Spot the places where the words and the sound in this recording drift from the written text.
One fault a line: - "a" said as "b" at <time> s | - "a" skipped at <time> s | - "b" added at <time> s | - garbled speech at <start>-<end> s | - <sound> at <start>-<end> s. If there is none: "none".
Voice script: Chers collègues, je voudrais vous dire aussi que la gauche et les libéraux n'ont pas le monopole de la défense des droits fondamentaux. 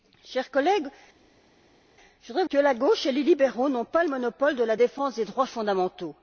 - "vous dire aussi" skipped at 2.4 s